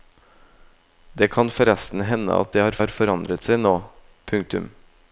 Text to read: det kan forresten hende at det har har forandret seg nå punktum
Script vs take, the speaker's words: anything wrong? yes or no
no